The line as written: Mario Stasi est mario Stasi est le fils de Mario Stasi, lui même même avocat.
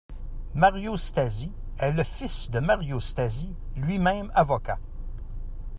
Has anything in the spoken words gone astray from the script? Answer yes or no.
yes